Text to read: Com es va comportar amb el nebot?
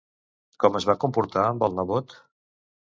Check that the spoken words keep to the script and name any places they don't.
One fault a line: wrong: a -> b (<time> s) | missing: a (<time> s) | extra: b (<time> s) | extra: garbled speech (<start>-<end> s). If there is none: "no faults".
no faults